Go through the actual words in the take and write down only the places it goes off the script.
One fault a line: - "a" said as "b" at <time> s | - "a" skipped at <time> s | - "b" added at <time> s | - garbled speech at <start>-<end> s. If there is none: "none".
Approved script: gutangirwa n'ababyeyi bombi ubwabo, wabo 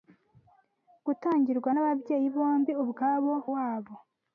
none